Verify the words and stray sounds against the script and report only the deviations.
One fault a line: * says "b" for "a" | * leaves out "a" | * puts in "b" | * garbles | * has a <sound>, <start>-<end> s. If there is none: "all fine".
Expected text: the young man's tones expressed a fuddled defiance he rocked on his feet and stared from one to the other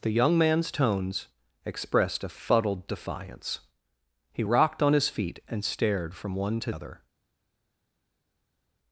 * leaves out "the"